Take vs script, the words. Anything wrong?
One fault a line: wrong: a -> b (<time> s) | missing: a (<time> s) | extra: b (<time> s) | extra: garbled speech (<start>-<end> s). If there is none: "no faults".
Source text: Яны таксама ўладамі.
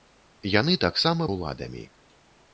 no faults